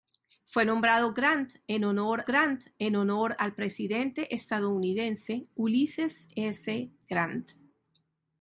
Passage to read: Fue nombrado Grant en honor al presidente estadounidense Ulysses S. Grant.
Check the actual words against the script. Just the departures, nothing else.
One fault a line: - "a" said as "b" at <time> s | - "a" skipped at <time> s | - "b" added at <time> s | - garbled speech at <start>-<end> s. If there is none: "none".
- "Grant en honor" added at 2.2 s